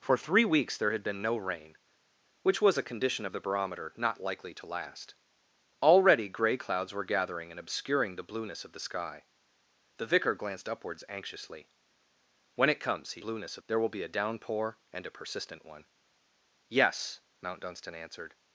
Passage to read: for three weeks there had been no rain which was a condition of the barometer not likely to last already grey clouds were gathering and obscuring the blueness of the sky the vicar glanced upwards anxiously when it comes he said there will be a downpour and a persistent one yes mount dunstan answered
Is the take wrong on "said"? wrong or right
wrong